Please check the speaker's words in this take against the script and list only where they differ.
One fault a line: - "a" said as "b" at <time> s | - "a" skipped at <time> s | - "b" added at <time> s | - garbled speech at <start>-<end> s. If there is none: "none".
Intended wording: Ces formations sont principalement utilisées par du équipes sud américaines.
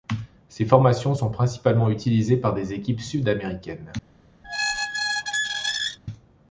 - "du" said as "des" at 2.5 s